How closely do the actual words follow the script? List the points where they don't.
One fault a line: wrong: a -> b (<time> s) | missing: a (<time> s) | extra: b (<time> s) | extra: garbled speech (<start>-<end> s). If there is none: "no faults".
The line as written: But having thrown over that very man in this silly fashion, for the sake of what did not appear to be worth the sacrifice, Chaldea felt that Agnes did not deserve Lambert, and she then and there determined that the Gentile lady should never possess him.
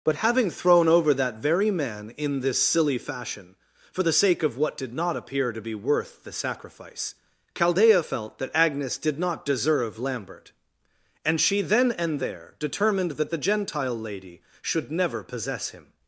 no faults